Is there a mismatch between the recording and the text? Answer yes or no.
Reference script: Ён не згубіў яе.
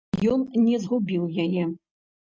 no